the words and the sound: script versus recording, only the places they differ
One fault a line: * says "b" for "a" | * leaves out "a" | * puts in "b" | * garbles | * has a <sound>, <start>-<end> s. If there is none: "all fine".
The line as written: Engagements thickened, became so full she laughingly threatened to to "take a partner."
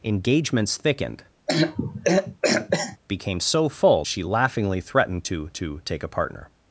* has a throat clearing, 1.5-3.0 s